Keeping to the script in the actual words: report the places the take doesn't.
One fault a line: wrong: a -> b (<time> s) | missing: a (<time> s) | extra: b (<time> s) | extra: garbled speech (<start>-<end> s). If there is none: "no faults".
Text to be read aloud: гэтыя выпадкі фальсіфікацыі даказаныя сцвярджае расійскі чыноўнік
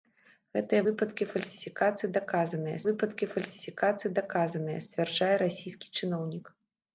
extra: выпадкі фальсіфікацыі даказаныя (2.9 s)